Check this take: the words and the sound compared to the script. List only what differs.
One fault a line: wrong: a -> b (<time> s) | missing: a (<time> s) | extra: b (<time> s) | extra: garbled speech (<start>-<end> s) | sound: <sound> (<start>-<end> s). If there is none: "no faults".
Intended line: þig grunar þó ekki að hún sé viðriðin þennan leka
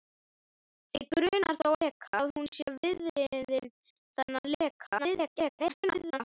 wrong: ekki -> leka (1.8 s)
extra: garbled speech (5.0-6.2 s)